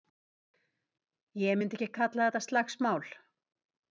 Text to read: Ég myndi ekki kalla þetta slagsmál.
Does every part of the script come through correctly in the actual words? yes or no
yes